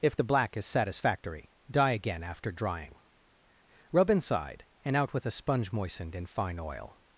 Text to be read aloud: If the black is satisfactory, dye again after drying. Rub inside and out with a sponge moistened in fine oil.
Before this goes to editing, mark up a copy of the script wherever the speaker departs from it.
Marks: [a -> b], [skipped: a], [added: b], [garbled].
If the black is satisfactory, dye again after drying. Rub inside and out with a sponge moistened in fine oil.